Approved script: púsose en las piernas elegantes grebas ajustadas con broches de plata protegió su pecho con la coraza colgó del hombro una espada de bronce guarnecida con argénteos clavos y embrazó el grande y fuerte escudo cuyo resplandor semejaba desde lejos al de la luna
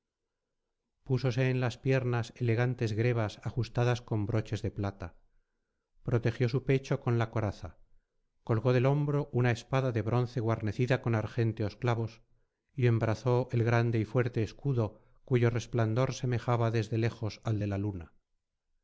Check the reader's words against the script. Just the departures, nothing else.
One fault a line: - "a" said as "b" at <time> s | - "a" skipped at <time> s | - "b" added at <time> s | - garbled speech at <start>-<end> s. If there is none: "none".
none